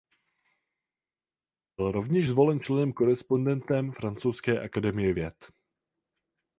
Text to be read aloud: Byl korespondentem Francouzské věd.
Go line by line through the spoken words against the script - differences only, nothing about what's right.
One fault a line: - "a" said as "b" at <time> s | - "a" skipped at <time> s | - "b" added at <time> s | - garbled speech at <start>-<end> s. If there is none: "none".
- "rovněž zvolen členem" added at 1.9 s
- "akademie" added at 4.6 s